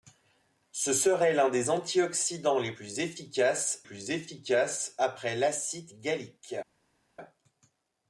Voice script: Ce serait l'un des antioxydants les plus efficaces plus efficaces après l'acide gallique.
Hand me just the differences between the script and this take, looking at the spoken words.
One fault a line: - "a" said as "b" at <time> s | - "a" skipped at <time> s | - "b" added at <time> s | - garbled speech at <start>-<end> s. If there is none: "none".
none